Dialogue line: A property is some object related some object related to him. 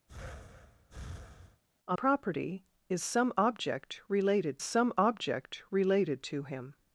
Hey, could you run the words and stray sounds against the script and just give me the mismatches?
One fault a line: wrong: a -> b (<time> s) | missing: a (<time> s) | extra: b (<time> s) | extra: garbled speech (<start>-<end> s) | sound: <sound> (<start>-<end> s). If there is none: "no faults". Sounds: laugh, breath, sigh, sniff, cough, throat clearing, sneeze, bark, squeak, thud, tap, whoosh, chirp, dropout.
sound: breath (0.1-1.6 s)